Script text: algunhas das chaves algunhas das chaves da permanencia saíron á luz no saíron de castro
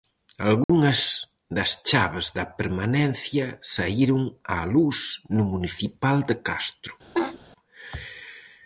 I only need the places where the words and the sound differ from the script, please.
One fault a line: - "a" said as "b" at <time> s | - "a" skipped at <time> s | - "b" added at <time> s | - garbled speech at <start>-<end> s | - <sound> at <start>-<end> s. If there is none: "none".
- dropout at 0.6-0.7 s
- "algunhas das chaves" skipped at 2.3 s
- "saíron" said as "municipal" at 5.5 s
- laugh at 7.1-7.4 s